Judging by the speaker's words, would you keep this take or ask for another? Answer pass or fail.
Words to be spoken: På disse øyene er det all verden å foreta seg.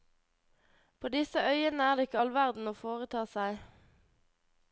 fail